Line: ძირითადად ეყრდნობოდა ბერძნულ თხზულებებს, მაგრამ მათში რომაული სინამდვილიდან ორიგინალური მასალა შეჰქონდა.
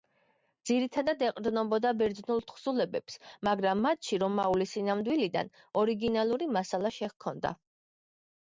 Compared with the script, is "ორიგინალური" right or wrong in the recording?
right